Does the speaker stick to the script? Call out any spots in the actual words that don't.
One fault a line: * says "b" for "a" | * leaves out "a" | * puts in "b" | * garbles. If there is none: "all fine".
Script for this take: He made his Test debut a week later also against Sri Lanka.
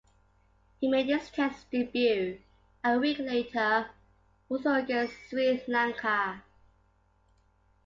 all fine